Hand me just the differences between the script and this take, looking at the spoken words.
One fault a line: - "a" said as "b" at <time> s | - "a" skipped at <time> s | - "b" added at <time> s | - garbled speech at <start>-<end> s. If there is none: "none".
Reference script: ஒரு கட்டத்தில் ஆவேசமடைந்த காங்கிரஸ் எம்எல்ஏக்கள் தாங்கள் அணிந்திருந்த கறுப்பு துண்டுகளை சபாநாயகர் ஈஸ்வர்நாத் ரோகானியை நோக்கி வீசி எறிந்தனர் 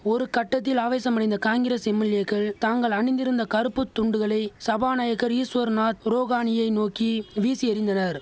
none